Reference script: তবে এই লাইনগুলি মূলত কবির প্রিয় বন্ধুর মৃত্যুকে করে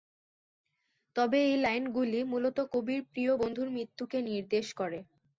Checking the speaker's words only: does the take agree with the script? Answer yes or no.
no